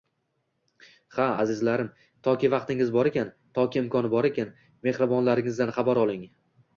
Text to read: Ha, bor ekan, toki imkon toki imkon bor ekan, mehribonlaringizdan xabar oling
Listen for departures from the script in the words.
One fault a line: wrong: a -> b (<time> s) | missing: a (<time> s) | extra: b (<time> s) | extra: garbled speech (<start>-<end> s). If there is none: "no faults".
extra: azizlarim toki vaqtingiz (1.4 s)
missing: toki imkon (4.1 s)